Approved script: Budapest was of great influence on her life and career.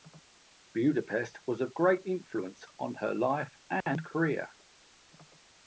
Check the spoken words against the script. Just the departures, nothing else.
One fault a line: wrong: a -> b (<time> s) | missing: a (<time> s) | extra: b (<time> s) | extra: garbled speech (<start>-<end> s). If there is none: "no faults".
no faults